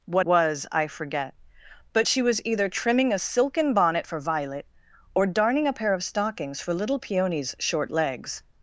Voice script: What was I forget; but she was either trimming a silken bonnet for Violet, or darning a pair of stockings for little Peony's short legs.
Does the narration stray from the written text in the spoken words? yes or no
no